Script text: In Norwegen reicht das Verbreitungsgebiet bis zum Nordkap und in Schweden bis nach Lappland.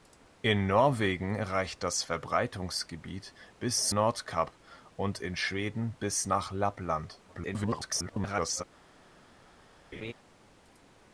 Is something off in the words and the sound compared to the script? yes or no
yes